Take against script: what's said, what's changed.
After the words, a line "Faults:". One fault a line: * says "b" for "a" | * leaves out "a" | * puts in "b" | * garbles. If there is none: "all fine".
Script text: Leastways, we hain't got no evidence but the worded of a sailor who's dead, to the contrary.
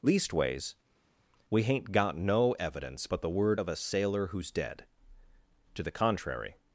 Leastways, we hain't got no evidence but the word of a sailor who's dead, to the contrary.
Faults:
* says "word" for "worded"